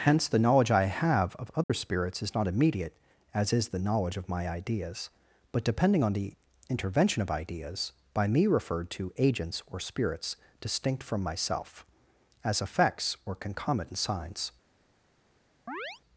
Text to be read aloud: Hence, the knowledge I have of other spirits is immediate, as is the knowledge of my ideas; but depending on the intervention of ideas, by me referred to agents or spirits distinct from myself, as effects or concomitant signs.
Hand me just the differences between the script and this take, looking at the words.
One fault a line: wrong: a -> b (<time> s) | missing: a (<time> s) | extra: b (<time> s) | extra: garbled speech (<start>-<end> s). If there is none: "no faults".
extra: not (2.3 s)